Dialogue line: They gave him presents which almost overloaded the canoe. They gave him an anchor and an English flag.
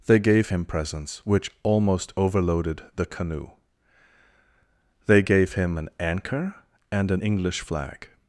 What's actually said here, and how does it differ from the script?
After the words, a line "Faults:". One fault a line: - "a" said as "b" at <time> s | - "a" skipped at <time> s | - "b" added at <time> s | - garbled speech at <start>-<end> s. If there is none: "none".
They gave him presents which almost overloaded the canoe. They gave him an anchor and an English flag.
Faults:
none